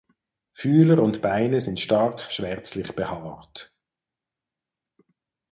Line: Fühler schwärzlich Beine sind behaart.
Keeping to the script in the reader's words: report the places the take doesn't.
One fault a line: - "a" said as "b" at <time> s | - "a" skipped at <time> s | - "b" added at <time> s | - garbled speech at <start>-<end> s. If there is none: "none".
- "schwärzlich" said as "und" at 1.0 s
- "stark schwärzlich" added at 1.8 s